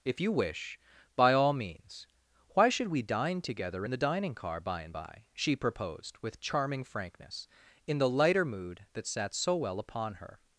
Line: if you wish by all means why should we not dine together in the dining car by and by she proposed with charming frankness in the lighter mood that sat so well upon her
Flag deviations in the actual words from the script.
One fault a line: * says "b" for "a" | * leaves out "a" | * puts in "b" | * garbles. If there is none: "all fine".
* leaves out "not"